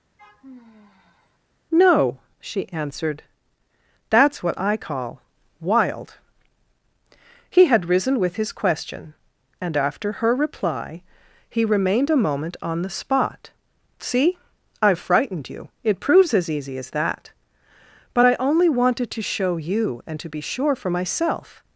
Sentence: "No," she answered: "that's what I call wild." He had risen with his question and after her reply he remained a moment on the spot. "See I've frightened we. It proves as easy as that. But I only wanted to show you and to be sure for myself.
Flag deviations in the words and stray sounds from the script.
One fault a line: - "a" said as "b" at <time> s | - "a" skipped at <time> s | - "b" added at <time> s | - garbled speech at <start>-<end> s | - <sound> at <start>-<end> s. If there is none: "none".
- sigh at 0.2-1.4 s
- "we" said as "you" at 15.5 s